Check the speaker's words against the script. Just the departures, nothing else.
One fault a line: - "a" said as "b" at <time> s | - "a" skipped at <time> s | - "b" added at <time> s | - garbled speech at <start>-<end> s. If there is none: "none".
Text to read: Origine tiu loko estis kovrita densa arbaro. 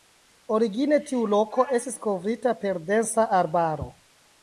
- "per" added at 2.6 s